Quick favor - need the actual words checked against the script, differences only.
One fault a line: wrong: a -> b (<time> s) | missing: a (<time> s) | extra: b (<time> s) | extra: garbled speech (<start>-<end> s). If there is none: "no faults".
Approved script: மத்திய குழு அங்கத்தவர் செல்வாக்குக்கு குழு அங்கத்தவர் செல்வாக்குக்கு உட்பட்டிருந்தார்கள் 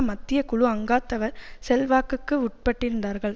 missing: குழு அங்கத்தவர் செல்வாக்குக்கு (2.3 s)